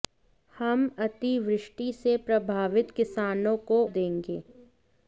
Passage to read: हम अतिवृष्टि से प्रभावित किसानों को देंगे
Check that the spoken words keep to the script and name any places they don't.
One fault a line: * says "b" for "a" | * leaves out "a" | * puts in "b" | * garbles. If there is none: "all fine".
all fine